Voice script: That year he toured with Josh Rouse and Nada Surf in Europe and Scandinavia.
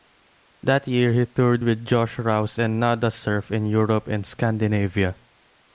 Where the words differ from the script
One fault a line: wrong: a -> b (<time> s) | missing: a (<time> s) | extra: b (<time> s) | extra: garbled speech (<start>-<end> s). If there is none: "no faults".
no faults